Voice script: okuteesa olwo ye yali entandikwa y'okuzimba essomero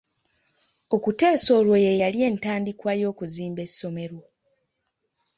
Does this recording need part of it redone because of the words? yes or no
no